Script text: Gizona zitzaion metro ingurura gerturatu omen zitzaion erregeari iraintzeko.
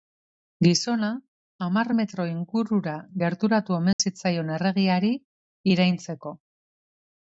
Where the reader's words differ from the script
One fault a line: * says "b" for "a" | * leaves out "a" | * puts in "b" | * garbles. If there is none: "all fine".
* says "hamar" for "zitzaion"